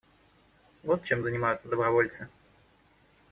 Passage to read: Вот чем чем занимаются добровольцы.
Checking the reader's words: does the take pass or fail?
fail